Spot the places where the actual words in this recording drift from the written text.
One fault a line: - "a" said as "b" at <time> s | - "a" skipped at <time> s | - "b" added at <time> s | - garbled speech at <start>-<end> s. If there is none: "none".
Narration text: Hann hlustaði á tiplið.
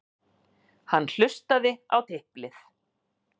none